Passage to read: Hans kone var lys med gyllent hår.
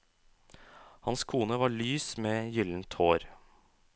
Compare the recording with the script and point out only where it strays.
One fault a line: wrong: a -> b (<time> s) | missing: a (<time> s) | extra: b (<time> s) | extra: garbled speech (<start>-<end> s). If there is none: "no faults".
no faults